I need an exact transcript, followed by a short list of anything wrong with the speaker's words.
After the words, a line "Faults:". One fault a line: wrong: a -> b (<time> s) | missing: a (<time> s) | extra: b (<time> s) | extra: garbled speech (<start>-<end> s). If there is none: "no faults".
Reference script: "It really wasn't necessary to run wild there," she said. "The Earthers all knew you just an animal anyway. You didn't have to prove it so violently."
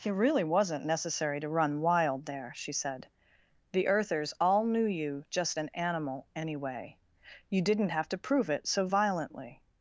"It really wasn't necessary to run wild there," she said. "The Earthers all knew you just an animal anyway. You didn't have to prove it so violently."
Faults:
no faults